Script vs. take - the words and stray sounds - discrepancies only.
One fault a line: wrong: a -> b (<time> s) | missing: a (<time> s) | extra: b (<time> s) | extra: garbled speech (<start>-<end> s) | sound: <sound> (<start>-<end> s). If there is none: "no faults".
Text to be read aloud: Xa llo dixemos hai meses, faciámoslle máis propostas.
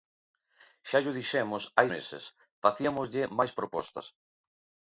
no faults